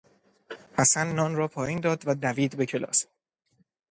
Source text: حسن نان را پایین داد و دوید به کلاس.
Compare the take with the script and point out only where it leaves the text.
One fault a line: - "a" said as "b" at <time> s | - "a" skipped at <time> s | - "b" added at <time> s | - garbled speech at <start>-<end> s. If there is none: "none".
none